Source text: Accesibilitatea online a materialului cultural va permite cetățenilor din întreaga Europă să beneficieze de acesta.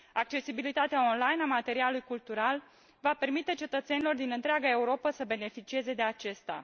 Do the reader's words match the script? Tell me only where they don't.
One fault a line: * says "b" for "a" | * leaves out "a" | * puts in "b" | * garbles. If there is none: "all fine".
all fine